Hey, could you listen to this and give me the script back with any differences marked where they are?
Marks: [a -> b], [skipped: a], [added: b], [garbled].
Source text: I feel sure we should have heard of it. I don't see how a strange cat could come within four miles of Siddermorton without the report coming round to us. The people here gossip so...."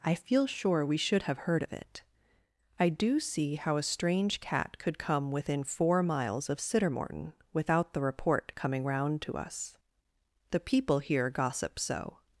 I feel sure we should have heard of it. I [don't -> do] see how a strange cat could come within four miles of Siddermorton without the report coming round to us. The people here gossip so...."